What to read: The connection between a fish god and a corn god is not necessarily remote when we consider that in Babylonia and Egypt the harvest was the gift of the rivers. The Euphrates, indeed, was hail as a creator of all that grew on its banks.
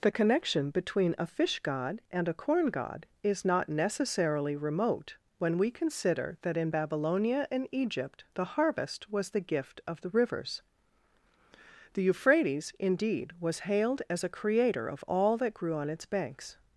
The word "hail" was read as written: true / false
false